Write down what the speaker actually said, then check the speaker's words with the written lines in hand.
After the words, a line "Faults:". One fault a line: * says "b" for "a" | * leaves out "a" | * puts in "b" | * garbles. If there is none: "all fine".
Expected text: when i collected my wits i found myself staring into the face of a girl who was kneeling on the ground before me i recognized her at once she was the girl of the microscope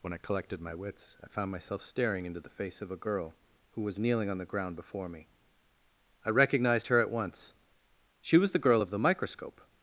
when i collected my wits i found myself staring into the face of a girl who was kneeling on the ground before me i recognized her at once she was the girl of the microscope
Faults:
all fine